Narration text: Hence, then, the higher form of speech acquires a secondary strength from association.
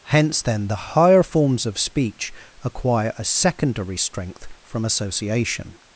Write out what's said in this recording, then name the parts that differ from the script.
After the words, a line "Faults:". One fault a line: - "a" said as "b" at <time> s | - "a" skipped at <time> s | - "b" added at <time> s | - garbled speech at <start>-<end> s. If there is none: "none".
Hence, then, the higher forms of speech acquire a secondary strength from association.
Faults:
- "form" said as "forms" at 1.2 s
- "acquires" said as "acquire" at 2.6 s